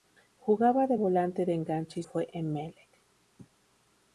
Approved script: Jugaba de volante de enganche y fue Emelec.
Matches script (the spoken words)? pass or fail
pass